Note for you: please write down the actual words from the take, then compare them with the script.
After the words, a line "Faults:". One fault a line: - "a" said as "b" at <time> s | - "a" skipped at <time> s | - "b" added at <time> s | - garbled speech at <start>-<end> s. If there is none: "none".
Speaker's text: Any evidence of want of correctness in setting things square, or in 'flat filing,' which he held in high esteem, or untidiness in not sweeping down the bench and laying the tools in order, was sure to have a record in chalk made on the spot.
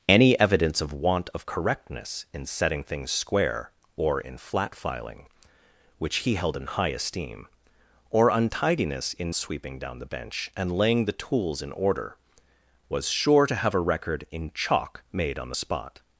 Any evidence of want of correctness in setting things square, or in 'flat filing,' which he held in high esteem, or untidiness in sweeping down the bench and laying the tools in order, was sure to have a record in chalk made on the spot.
Faults:
- "not" skipped at 9.3 s